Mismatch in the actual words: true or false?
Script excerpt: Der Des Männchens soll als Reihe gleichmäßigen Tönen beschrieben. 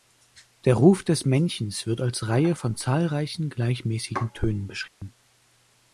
true